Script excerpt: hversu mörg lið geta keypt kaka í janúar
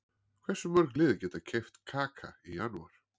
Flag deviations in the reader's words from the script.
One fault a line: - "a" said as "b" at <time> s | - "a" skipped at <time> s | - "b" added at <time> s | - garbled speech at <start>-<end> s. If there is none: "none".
none